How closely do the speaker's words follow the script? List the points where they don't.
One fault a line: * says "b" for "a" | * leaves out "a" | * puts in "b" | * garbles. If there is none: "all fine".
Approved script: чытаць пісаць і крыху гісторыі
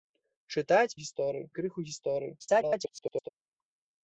* says "гісторыі" for "пісаць"
* garbles